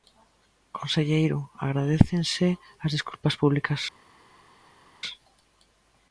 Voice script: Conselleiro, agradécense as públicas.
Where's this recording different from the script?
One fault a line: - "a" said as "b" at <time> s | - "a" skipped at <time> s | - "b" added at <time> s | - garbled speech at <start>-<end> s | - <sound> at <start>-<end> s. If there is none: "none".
- "desculpas" added at 3.0 s